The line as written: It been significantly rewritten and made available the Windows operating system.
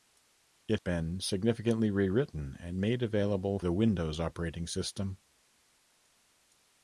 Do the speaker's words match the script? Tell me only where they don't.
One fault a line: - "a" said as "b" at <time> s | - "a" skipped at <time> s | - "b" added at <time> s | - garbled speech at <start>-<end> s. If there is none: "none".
none